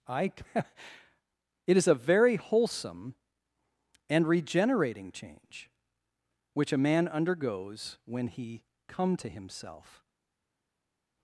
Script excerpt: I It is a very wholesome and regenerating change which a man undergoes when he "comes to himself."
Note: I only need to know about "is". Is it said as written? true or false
true